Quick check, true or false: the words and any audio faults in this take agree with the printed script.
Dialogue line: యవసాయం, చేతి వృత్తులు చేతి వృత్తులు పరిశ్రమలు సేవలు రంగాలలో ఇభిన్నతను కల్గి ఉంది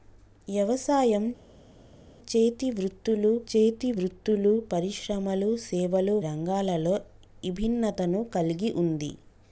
true